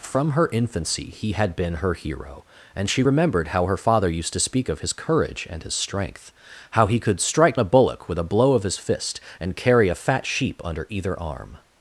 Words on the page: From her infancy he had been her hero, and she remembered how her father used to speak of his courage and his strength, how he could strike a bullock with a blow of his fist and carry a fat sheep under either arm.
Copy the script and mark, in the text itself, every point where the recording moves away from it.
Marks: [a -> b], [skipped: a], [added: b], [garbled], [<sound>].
From her infancy he had been her hero, and she remembered how her father used to speak of his courage and his strength, how he could strike a bullock with a blow of his fist and carry a fat sheep under either arm.